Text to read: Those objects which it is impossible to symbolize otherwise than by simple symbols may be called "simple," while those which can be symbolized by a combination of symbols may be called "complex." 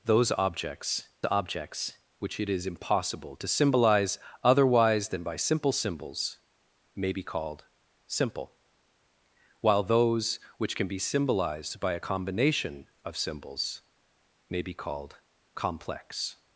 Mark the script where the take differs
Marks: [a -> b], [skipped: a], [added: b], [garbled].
Those objects [added: objects] which it is impossible to symbolize otherwise than by simple symbols may be called "simple," while those which can be symbolized by a combination of symbols may be called "complex."